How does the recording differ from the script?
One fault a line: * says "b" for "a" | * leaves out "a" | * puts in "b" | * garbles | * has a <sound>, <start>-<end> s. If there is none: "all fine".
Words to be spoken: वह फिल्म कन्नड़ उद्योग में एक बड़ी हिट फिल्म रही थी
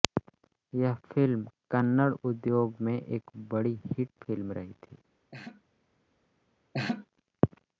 * says "यह" for "वह"
* has a laugh, 5.3-5.6 s
* has a laugh, 6.7-7.1 s